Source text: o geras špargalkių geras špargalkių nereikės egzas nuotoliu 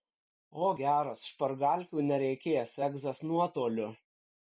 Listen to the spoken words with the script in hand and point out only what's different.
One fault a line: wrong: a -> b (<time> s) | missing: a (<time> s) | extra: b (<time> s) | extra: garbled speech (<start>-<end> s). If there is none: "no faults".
missing: geras špargalkių (2.1 s)